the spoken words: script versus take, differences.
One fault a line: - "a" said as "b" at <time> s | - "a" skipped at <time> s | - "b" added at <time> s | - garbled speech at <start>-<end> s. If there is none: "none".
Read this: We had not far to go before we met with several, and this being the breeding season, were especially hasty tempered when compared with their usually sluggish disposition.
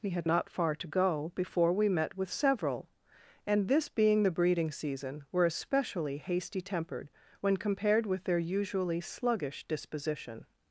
none